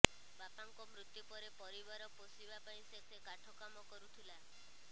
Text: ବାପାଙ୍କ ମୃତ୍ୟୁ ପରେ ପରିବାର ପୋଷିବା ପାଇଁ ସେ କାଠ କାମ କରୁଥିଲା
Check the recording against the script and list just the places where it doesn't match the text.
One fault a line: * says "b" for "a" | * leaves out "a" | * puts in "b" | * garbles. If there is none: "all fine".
* puts in "ସେ"